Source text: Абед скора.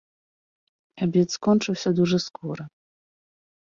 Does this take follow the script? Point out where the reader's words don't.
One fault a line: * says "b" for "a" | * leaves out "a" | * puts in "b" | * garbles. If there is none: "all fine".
* puts in "скончыўся дужа"